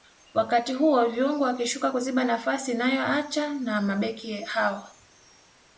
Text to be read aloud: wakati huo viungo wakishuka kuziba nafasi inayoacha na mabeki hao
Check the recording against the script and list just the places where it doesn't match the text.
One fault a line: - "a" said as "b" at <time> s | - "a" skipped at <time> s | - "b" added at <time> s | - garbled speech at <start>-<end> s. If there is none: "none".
none